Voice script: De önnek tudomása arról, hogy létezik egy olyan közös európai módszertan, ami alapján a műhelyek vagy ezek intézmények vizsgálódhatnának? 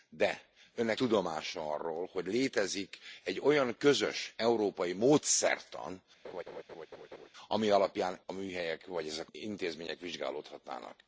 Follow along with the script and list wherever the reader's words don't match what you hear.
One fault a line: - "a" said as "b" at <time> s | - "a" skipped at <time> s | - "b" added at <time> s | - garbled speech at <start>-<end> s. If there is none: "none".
none